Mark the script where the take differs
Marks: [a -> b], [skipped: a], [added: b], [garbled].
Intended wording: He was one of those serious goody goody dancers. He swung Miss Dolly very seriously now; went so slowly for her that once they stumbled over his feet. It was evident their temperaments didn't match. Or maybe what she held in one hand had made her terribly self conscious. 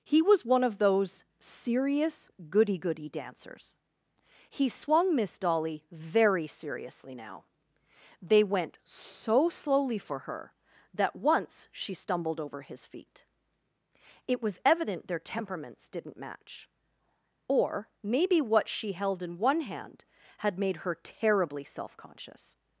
He was one of those serious goody goody dancers. He swung Miss Dolly very seriously now; [added: they] went so slowly for her that once [they -> she] stumbled over his feet. It was evident their temperaments didn't match. Or maybe what she held in one hand had made her terribly self conscious.